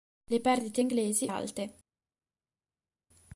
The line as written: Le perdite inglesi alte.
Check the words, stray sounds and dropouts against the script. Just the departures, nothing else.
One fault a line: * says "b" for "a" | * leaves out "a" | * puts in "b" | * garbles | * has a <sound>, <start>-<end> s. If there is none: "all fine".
all fine